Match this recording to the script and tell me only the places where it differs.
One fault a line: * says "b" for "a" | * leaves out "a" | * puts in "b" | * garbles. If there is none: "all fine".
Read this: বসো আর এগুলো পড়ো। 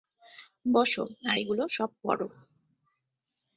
* puts in "সব"